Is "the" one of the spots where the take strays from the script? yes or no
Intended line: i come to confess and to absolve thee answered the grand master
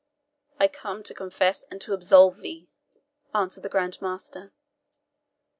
no